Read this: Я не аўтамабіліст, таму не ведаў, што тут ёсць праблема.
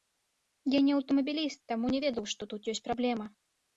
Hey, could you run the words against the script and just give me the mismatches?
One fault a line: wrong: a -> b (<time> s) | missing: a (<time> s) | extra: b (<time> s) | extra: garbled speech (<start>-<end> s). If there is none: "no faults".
no faults